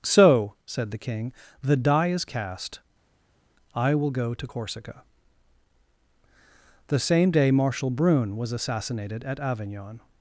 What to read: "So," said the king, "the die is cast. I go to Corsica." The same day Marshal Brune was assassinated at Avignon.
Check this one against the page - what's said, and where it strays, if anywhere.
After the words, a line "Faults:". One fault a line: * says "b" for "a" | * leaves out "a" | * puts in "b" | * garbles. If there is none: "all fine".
"So," said the king, "the die is cast. I will go to Corsica." The same day Marshal Brune was assassinated at Avignon.
Faults:
* puts in "will"